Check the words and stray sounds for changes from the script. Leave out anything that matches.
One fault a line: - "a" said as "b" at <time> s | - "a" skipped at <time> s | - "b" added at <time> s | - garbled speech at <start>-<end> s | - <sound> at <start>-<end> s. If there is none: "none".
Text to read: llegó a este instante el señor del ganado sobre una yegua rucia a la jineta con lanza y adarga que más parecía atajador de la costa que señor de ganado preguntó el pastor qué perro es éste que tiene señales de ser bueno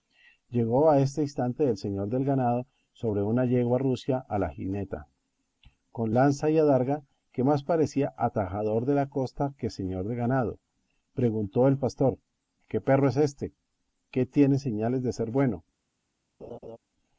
- laugh at 16.4-16.8 s